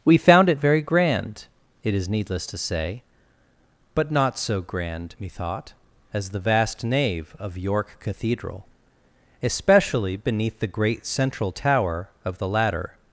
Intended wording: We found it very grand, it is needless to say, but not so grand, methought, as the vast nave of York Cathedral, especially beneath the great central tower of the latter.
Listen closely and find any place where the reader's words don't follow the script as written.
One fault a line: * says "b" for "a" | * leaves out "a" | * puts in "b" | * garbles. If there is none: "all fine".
all fine